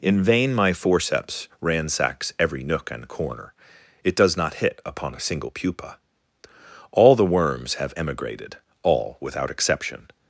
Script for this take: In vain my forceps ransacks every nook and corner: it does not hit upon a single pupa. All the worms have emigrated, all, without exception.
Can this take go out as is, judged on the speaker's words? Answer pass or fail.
pass